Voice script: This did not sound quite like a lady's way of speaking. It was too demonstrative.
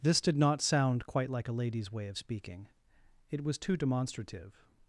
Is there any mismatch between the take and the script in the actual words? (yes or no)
no